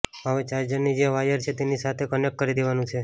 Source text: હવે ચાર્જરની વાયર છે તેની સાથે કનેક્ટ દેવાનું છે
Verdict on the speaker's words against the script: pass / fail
fail